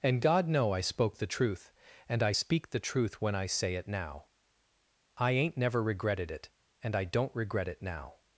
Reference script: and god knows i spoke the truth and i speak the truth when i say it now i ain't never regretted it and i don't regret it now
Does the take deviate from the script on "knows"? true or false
true